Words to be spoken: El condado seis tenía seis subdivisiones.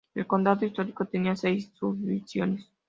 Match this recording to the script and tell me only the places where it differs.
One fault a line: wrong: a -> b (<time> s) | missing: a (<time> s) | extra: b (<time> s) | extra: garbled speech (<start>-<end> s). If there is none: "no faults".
wrong: seis -> histórico (0.7 s)